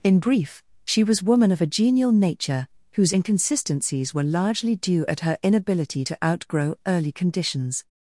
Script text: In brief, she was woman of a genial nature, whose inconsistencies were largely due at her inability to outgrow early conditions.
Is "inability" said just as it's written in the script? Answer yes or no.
yes